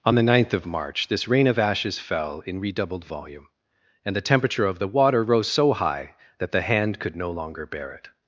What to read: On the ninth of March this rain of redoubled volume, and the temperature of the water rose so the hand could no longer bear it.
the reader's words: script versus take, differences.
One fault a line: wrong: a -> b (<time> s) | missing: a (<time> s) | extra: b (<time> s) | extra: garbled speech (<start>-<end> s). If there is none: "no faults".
extra: ashes fell in (1.6 s)
extra: high that (5.7 s)